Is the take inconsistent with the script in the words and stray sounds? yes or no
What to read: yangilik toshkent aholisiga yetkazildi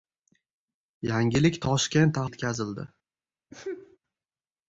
yes